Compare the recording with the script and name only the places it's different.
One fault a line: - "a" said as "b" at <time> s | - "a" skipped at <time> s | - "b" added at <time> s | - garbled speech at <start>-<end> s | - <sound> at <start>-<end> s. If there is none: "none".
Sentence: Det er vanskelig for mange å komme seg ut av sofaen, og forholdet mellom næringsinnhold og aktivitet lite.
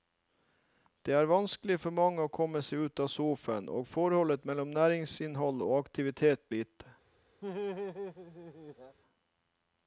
- laugh at 7.4-9.0 s